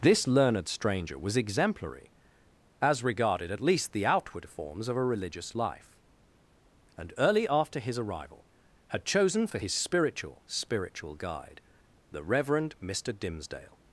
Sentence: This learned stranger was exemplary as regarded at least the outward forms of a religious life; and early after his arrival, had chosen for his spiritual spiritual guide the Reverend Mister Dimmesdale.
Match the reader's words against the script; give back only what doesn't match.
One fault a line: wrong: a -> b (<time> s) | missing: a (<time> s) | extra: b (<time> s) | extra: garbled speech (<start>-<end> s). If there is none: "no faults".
no faults